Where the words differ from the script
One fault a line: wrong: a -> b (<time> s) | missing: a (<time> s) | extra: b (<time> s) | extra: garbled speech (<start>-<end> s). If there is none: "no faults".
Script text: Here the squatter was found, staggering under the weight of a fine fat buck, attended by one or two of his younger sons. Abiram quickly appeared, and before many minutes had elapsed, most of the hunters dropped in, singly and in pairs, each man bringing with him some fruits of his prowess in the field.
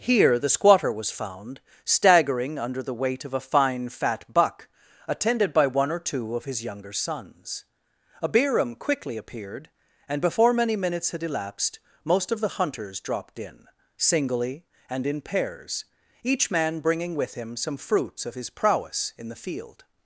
no faults